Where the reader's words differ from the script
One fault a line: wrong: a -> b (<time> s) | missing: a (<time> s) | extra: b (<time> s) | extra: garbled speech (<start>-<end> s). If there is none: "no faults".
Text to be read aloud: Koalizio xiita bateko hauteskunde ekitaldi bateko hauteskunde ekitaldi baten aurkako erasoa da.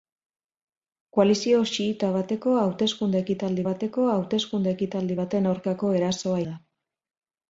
no faults